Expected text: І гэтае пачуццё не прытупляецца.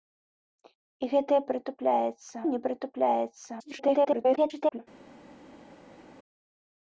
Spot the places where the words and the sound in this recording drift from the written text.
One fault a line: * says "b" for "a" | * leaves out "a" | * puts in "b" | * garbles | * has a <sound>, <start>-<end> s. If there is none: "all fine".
* says "прытупляецца" for "пачуццё"
* garbles